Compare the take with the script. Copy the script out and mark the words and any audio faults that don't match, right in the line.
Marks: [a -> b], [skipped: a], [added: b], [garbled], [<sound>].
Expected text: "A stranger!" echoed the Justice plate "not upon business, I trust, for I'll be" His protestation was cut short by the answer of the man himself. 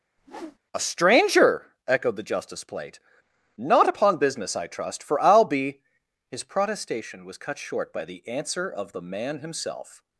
[whoosh] "A stranger!" echoed the Justice plate "not upon business, I trust, for I'll be" His protestation was cut short by the answer of the man himself.